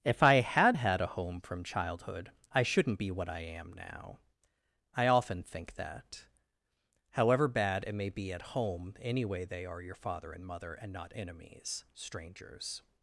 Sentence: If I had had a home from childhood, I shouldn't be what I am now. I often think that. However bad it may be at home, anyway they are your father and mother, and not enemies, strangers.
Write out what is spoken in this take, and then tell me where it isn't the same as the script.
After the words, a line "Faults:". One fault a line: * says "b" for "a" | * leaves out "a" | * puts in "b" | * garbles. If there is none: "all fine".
If I had had a home from childhood, I shouldn't be what I am now. I often think that. However bad it may be at home, anyway they are your father and mother, and not enemies, strangers.
Faults:
all fine